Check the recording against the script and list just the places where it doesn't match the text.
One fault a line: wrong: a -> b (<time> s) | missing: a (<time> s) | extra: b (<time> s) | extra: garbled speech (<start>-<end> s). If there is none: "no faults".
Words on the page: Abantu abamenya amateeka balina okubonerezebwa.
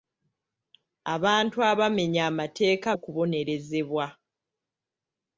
missing: balina (2.9 s)